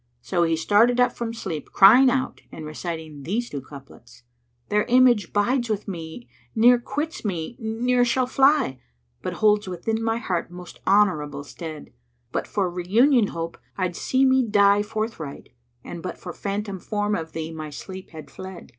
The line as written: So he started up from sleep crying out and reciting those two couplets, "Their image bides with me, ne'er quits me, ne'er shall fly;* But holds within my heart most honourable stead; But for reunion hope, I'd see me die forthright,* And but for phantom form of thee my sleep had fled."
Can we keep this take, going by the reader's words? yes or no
no